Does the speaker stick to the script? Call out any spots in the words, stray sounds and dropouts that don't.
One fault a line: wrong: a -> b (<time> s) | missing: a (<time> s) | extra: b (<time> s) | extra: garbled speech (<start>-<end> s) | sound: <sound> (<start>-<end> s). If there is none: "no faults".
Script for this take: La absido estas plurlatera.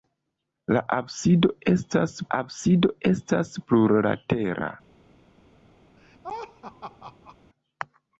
extra: absido estas (2.4 s)
sound: laugh (6.0-7.4 s)